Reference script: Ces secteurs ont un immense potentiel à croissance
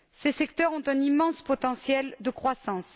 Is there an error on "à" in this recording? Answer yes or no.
yes